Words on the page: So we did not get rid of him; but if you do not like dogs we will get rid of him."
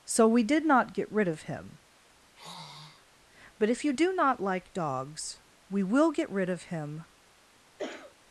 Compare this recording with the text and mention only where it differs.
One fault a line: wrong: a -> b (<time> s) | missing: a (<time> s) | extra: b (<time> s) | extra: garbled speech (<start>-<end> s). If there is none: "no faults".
no faults